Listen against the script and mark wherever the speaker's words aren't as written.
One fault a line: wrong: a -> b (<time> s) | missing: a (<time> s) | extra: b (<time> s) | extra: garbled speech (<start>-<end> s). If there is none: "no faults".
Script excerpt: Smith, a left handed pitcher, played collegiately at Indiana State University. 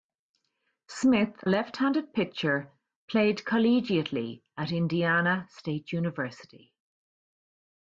missing: a (1.4 s)